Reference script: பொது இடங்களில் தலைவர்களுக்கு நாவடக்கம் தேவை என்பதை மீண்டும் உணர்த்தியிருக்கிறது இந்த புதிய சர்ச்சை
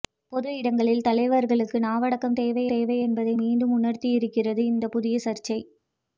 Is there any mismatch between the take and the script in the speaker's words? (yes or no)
yes